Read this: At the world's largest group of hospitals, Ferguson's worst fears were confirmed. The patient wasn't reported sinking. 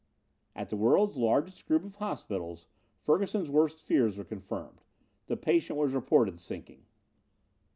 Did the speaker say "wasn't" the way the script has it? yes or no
no